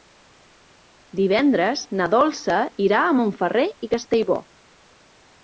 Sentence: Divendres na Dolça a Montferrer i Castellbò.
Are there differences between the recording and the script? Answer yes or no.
yes